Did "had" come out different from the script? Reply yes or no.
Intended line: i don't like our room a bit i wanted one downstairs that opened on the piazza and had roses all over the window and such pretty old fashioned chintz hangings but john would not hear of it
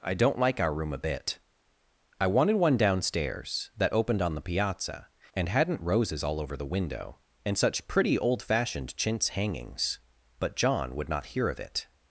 yes